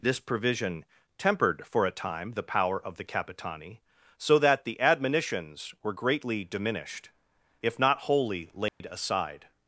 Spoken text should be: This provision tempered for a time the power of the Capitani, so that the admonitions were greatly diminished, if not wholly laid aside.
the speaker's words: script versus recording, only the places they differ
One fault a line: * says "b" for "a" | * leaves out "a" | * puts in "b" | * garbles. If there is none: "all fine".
all fine